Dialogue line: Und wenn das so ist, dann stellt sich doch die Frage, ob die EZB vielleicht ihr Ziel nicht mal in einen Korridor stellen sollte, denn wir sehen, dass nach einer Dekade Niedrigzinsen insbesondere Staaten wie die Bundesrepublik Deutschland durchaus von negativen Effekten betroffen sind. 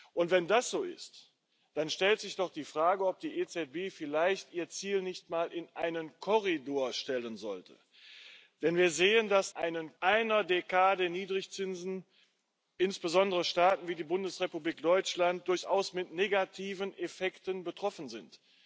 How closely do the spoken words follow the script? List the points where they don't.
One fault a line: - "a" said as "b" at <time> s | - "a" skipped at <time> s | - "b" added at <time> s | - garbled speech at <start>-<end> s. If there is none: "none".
- "nach" said as "einen" at 9.5 s